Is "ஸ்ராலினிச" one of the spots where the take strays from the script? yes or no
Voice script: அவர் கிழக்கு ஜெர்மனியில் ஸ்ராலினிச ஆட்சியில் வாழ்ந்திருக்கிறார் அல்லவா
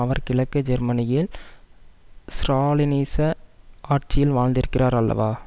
no